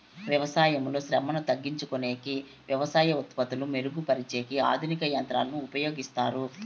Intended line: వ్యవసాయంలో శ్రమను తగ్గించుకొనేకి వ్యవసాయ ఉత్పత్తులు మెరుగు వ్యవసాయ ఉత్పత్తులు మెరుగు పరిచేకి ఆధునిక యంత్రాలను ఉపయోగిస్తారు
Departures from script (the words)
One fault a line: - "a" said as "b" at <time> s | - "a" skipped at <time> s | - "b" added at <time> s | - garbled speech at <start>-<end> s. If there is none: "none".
- "వ్యవసాయ ఉత్పత్తులు మెరుగు" skipped at 4.0 s